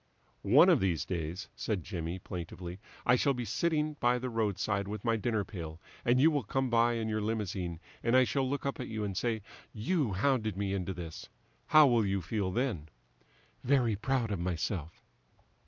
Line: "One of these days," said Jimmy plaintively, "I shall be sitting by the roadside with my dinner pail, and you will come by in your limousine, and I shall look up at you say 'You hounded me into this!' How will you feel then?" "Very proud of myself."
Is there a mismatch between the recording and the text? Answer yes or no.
yes